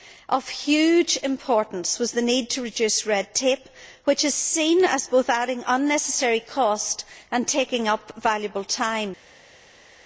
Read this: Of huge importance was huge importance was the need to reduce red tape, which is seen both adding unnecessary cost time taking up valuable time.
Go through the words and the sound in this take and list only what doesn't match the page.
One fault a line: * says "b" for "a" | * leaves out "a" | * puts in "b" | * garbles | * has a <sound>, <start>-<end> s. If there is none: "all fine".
* leaves out "huge importance was"
* puts in "as"
* says "and" for "time"